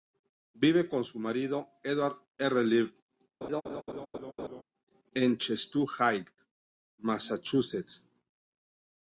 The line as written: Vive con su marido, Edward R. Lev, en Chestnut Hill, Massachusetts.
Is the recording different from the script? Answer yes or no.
no